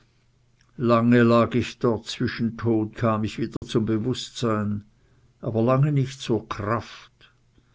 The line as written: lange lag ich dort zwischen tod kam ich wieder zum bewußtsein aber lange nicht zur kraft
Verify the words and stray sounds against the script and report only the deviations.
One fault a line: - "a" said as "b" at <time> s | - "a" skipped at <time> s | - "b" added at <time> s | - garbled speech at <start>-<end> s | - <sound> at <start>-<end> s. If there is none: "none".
- dropout at 3.6-3.6 s